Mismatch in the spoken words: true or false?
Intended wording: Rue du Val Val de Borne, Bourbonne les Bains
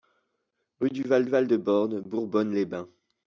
false